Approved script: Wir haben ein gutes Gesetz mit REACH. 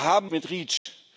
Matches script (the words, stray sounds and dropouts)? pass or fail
fail